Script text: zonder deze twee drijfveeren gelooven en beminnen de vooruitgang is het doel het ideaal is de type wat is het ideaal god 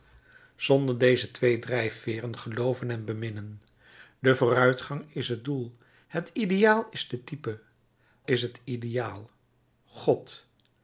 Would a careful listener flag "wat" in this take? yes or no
yes